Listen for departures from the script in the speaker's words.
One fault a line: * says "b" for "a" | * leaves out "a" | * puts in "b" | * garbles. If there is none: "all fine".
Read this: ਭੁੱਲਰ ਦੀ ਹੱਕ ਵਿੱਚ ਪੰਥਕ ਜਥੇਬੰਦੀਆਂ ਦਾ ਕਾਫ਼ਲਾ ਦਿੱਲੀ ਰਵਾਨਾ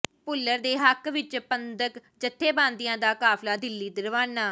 * says "ਦੇ" for "ਦੀ"